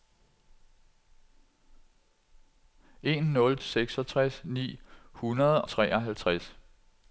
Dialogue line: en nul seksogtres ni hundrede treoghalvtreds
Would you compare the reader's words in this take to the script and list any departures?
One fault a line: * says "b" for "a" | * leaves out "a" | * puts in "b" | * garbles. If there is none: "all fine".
all fine